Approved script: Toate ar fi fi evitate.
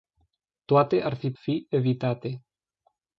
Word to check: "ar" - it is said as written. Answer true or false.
true